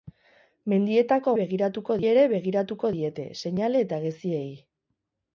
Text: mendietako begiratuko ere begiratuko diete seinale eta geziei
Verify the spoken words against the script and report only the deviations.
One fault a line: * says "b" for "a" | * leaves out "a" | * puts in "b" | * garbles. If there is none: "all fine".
all fine